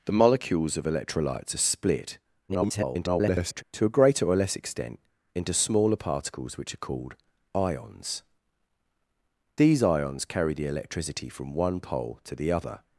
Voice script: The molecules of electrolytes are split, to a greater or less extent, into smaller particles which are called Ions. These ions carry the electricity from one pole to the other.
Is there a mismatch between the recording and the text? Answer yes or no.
yes